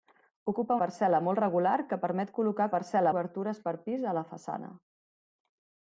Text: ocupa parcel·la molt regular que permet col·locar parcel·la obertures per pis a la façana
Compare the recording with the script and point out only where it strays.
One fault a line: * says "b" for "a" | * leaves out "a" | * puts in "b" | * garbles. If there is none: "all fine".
all fine